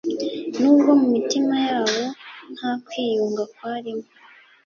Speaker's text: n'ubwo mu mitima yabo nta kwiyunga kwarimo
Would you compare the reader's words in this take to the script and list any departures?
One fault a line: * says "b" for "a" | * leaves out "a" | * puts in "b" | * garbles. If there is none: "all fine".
all fine